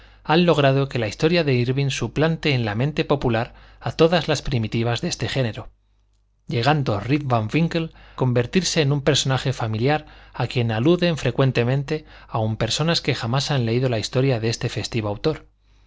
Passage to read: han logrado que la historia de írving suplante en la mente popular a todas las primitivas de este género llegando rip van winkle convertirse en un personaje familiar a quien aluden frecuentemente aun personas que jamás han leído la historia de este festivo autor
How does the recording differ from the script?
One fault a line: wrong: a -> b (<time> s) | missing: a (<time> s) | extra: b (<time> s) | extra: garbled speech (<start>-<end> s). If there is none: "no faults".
no faults